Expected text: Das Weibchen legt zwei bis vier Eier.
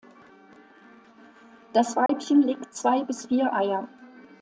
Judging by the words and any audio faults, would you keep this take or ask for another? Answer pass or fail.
fail